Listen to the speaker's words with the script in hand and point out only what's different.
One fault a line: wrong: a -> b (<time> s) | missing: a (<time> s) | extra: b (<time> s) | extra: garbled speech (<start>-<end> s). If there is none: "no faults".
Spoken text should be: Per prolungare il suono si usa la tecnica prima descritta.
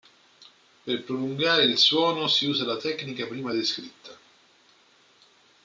no faults